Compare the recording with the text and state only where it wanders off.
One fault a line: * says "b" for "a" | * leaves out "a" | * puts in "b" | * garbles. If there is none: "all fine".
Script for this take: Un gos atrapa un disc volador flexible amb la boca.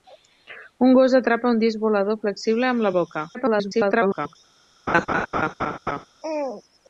* garbles